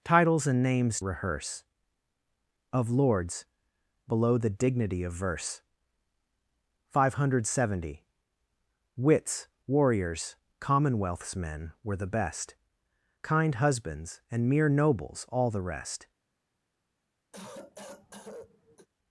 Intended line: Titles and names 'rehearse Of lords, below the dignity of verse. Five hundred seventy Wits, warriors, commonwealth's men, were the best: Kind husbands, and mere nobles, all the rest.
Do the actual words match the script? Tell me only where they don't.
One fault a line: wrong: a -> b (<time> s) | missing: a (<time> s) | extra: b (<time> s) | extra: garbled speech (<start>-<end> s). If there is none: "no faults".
no faults